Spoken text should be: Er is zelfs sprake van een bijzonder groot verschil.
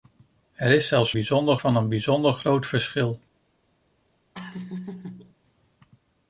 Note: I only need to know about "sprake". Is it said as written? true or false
false